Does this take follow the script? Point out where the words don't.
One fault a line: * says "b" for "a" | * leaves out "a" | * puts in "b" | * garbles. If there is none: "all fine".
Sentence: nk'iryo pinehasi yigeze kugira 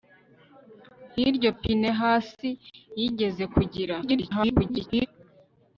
* garbles